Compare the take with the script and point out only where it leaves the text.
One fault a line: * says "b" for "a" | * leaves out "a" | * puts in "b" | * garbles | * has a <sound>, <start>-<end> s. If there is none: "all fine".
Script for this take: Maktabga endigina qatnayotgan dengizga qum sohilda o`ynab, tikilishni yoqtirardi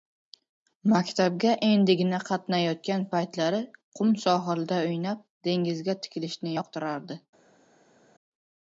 * says "paytlari" for "dengizga"
* puts in "dengizga"